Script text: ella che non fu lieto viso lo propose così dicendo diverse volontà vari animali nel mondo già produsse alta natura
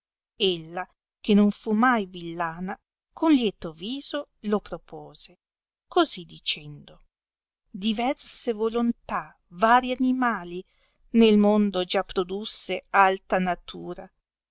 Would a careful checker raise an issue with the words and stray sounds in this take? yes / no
yes